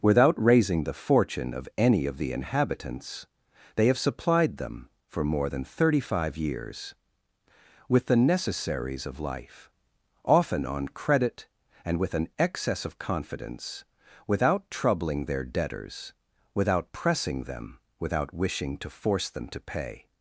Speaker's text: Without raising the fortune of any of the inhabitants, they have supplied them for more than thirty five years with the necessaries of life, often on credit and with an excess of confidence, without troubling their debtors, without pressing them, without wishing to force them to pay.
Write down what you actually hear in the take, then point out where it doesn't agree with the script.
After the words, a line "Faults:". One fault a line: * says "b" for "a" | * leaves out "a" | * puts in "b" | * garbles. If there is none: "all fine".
Without raising the fortune of any of the inhabitants, they have supplied them for more than thirty five years with the necessaries of life, often on credit and with an excess of confidence, without troubling their debtors, without pressing them, without wishing to force them to pay.
Faults:
all fine